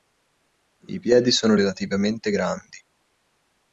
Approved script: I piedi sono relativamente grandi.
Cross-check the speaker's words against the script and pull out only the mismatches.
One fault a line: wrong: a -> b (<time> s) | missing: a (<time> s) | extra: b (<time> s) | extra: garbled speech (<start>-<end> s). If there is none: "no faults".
no faults